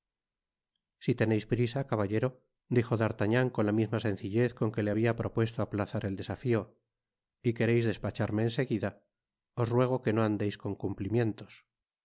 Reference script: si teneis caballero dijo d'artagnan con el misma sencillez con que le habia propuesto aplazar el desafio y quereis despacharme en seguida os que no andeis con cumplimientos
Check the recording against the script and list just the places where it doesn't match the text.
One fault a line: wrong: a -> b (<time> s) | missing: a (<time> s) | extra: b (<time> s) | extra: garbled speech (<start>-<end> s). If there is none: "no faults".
extra: prisa (1.5 s)
wrong: el -> la (3.7 s)
extra: ruego (9.8 s)